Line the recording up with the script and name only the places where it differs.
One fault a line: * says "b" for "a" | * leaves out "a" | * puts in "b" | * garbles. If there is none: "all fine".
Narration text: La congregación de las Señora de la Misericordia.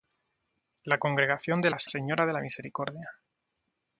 all fine